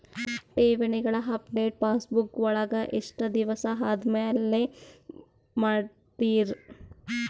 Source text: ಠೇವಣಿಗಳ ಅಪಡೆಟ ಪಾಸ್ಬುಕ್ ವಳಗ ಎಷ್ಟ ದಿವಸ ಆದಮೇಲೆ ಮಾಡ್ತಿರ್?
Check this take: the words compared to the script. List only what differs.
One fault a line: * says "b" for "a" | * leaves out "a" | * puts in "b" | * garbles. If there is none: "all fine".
all fine